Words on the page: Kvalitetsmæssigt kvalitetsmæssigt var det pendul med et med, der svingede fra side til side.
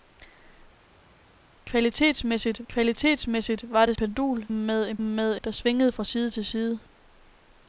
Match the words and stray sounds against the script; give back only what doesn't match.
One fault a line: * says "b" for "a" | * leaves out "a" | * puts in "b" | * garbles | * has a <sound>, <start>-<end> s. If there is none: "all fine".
all fine